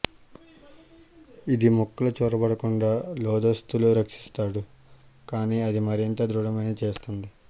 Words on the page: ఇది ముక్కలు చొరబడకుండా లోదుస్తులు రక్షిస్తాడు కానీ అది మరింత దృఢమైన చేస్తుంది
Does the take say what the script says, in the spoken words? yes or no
yes